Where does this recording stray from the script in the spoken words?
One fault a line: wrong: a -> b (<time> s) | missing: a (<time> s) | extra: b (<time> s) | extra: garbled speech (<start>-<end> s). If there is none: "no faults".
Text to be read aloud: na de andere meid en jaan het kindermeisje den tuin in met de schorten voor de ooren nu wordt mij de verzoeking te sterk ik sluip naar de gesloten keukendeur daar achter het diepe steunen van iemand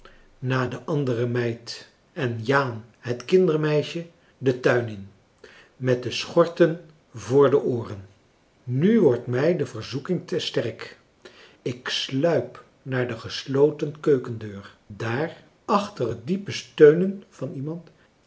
no faults